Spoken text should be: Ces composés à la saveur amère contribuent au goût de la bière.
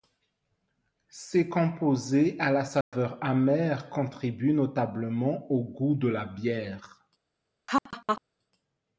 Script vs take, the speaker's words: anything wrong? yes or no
yes